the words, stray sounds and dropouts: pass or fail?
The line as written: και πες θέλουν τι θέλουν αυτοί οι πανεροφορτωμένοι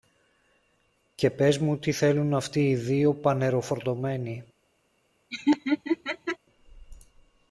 fail